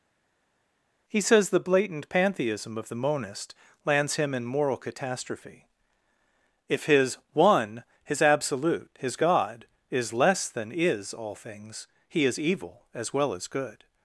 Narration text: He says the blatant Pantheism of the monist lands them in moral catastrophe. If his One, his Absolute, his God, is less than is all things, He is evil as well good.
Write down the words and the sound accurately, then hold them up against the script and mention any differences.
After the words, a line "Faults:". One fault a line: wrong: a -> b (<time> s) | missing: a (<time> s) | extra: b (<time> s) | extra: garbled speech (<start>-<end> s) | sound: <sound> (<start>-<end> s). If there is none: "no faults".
He says the blatant Pantheism of the monist lands him in moral catastrophe. If his One, his Absolute, his God, is less than is all things, He is evil as well as good.
Faults:
wrong: them -> him (4.2 s)
extra: as (13.3 s)